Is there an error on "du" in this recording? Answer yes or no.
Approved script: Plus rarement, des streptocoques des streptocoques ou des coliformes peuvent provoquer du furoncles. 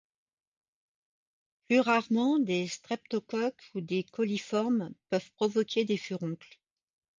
yes